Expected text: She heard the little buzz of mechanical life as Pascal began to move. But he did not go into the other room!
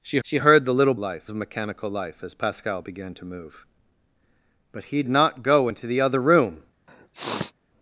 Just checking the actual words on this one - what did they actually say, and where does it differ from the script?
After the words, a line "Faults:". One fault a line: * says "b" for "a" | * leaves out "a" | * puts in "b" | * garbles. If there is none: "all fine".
She she heard the little life of mechanical life as Pascal began to move. But he not go into the other room!
Faults:
* puts in "she"
* says "life" for "buzz"
* leaves out "did"